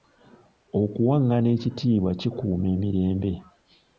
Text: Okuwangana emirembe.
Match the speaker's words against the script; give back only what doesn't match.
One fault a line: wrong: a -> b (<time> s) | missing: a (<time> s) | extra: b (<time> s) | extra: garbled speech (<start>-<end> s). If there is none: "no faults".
extra: ekitiibwa kikuuma (1.6 s)